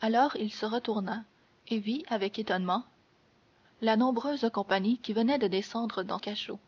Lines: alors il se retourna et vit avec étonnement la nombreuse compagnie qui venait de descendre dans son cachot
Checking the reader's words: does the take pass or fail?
fail